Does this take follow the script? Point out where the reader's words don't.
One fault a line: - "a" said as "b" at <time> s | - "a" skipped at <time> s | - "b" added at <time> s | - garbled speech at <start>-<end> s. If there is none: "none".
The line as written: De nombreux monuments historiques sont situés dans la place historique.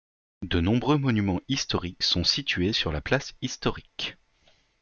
- "dans" said as "sur" at 2.7 s